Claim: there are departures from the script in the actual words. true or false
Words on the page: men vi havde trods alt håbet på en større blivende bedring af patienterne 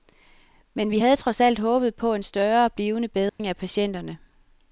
false